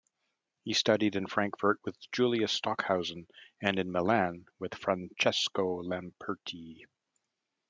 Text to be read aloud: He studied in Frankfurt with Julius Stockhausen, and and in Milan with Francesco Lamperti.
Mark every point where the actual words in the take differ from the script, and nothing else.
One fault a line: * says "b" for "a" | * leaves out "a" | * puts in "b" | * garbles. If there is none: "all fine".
* leaves out "and"